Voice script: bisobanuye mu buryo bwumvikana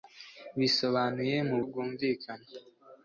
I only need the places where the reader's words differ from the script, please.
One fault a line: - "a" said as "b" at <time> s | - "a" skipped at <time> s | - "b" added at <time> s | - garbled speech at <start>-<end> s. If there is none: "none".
- "buryo" skipped at 1.6 s